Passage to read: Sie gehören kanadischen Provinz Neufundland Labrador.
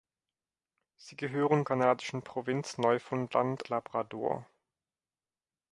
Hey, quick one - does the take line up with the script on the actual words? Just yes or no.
yes